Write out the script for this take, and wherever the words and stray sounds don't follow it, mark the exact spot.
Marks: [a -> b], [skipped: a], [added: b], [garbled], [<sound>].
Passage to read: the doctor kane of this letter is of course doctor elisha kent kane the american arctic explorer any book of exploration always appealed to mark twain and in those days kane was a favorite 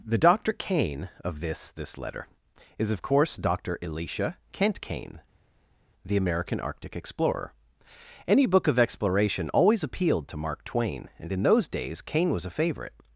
the doctor kane of this [added: this] letter is of course doctor elisha kent kane the american arctic explorer any book of exploration always appealed to mark twain and in those days kane was a favorite